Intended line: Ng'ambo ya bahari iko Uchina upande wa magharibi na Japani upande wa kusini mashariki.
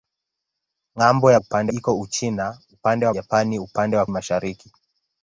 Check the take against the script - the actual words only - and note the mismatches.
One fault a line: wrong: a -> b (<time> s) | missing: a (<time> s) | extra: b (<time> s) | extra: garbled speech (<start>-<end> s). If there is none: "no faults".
wrong: bahari -> upande (1.4 s)
missing: magharibi na (3.1 s)
missing: kusini (4.1 s)